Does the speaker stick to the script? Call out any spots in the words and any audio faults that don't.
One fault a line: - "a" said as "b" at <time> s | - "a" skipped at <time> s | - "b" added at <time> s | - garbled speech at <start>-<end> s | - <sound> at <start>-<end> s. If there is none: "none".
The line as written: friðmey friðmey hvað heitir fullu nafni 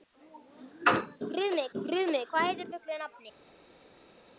none